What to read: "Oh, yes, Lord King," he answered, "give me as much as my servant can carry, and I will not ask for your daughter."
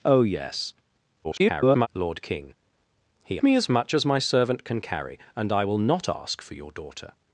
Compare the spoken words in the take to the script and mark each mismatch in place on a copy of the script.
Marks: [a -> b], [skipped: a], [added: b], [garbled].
"Oh, yes, [garbled] Lord King," he [skipped: answered, "give] me as much as my servant can carry, and I will not ask for your daughter."